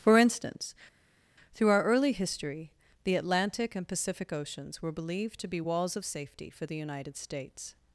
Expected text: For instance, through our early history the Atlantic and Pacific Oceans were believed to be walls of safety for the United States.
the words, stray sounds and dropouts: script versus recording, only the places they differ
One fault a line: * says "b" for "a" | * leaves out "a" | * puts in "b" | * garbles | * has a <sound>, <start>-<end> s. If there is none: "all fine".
all fine